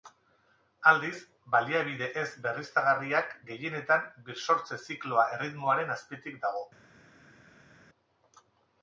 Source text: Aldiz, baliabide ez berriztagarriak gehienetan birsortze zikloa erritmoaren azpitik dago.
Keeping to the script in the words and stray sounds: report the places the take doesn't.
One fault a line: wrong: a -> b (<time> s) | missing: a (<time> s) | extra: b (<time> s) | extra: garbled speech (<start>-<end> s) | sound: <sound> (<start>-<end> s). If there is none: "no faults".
no faults